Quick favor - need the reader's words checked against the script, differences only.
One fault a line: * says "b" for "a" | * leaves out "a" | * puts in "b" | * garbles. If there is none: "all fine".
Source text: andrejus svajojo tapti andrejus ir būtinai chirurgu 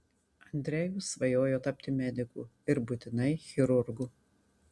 * says "mediku" for "andrejus"